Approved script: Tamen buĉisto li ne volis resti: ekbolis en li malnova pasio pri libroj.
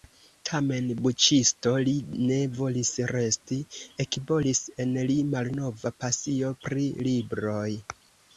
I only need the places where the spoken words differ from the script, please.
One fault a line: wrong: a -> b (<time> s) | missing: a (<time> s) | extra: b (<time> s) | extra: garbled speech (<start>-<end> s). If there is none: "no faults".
no faults